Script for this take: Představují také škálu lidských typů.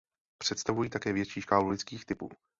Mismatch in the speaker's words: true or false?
true